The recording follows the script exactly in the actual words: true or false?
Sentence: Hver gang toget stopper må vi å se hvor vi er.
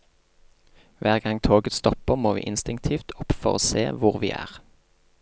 false